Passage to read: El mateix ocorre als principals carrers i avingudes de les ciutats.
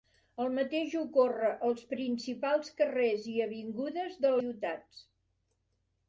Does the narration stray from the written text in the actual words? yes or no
yes